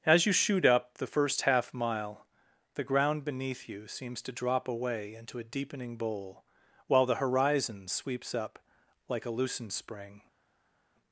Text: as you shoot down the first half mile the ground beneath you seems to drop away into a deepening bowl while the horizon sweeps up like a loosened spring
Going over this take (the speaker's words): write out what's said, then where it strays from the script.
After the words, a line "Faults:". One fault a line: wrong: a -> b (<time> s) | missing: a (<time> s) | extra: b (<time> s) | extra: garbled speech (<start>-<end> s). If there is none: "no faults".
as you shoot up the first half mile the ground beneath you seems to drop away into a deepening bowl while the horizon sweeps up like a loosened spring
Faults:
wrong: down -> up (0.7 s)